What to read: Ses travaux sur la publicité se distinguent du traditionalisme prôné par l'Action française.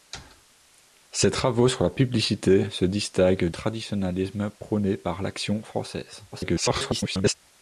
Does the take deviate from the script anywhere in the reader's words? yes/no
yes